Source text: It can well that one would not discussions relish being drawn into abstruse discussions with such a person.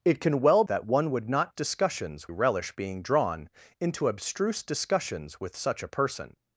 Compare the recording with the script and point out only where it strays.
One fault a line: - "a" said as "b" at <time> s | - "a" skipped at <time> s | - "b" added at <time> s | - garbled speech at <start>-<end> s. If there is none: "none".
none